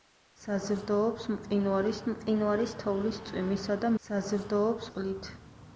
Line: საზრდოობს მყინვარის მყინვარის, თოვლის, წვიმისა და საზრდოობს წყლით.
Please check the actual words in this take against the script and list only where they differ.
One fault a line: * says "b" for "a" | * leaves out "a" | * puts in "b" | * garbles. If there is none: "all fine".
all fine